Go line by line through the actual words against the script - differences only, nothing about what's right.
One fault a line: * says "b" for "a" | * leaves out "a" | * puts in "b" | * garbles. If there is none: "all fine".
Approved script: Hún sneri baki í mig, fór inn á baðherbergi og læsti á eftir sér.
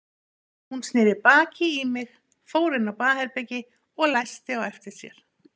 all fine